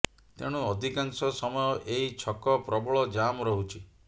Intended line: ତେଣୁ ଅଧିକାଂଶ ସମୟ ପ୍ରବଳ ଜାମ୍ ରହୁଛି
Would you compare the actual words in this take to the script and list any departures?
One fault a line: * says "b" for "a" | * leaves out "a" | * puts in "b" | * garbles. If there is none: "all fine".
* puts in "ଏହି ଛକ"